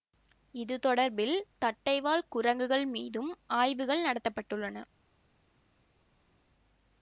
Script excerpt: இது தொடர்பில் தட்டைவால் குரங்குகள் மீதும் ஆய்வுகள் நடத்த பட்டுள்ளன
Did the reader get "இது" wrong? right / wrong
right